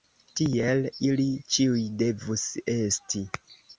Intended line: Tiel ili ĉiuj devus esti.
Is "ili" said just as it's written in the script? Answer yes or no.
yes